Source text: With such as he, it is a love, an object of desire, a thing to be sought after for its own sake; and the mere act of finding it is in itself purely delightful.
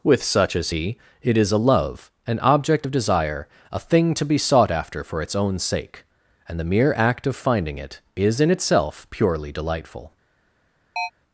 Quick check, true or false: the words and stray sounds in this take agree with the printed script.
false